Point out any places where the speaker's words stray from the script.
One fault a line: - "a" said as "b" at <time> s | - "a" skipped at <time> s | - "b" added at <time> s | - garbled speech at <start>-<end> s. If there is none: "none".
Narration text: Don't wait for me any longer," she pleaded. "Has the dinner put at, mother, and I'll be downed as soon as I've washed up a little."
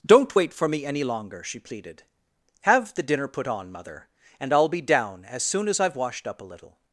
- "Has" said as "Have" at 2.6 s
- "at" said as "on" at 3.5 s
- "downed" said as "down" at 4.8 s